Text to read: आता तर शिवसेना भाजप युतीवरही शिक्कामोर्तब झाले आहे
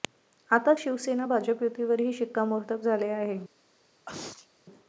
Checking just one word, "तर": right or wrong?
wrong